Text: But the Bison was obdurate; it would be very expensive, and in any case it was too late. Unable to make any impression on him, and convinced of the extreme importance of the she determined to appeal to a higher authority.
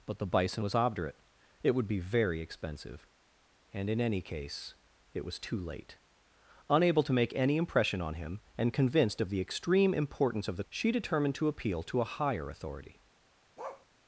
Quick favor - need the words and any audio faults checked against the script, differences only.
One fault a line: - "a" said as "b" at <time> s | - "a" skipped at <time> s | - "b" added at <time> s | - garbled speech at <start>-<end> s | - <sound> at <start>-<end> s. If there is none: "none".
- bark at 13.6-13.9 s